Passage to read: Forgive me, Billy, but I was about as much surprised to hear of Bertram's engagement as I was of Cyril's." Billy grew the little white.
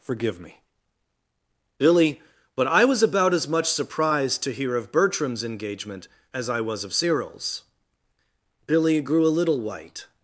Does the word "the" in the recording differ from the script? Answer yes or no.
yes